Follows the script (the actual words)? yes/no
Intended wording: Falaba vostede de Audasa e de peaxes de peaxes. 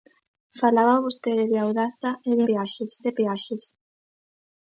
yes